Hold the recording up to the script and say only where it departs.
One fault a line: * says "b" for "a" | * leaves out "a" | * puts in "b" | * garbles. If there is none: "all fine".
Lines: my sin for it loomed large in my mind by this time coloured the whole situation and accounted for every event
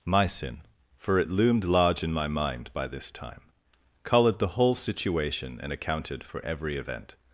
all fine